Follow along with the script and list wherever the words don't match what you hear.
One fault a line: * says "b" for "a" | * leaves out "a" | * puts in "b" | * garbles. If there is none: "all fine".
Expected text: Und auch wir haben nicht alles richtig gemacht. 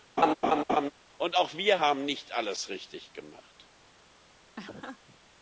all fine